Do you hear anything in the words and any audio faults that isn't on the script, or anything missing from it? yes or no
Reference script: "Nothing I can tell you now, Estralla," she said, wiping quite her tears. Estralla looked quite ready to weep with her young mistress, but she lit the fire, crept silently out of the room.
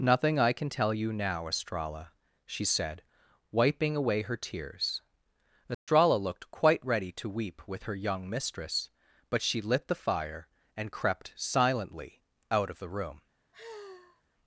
yes